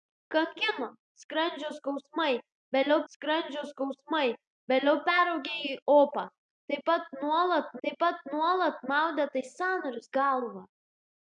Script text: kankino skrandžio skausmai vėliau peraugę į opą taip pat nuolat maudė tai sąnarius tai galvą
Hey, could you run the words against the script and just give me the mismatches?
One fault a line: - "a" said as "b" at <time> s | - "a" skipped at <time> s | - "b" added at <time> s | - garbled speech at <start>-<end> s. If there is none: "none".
- "skrandžio skausmai vėliau" added at 3.1 s
- "taip pat nuolat" added at 7.9 s
- "tai" skipped at 10.1 s